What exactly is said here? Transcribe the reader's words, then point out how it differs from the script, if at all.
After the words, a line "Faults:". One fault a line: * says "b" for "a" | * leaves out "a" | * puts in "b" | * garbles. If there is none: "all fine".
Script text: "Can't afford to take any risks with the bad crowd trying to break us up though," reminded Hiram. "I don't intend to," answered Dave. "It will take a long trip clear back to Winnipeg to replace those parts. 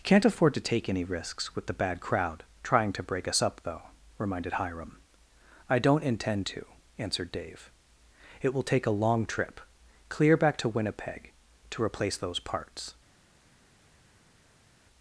"Can't afford to take any risks with the bad crowd trying to break us up though," reminded Hiram. "I don't intend to," answered Dave. "It will take a long trip clear back to Winnipeg to replace those parts.
Faults:
all fine